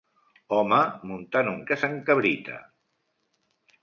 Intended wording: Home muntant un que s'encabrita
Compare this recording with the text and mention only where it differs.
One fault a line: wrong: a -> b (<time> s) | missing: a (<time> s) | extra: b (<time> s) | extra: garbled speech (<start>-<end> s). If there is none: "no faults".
no faults